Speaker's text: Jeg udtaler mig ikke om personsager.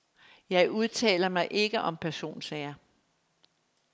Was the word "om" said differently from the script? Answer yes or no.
no